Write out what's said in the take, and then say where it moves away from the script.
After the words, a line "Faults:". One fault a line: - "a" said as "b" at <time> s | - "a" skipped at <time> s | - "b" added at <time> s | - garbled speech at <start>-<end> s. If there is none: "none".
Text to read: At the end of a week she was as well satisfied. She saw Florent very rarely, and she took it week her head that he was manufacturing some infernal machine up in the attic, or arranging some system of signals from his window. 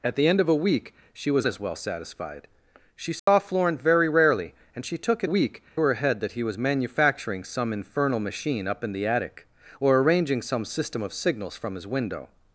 At the end of a week she was as well satisfied. She saw Florent very rarely, and she took it week her head that he was manufacturing some infernal machine up in the attic, or arranging some system of signals from his window.
Faults:
none